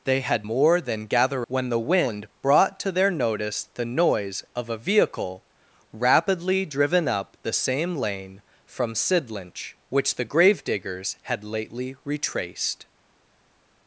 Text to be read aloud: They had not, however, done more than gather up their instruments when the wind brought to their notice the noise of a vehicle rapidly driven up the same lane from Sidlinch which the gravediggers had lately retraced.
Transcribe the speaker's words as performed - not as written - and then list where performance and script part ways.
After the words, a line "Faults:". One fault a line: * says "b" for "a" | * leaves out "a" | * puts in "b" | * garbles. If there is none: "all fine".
They had more than gather when the wind brought to their notice the noise of a vehicle rapidly driven up the same lane from Sidlinch which the gravediggers had lately retraced.
Faults:
* leaves out "not however done"
* leaves out "up their instruments"